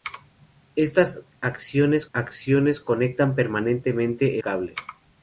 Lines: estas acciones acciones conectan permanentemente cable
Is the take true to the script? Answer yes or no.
yes